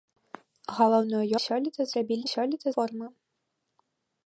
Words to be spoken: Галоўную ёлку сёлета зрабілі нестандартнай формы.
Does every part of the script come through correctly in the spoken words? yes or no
no